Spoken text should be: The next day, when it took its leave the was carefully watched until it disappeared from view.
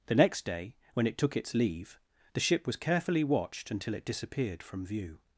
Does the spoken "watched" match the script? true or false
true